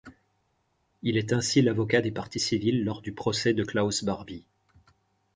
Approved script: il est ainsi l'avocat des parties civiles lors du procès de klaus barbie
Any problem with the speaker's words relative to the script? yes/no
no